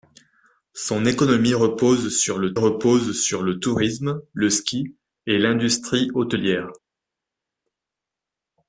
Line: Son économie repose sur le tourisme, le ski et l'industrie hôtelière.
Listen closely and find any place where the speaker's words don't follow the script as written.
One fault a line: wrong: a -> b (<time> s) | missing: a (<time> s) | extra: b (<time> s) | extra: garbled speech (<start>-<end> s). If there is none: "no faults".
extra: repose sur le (2.5 s)